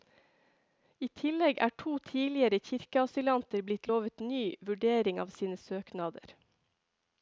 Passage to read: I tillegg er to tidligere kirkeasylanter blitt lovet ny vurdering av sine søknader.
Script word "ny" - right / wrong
right